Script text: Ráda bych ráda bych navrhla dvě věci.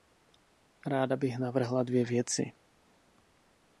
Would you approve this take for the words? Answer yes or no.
no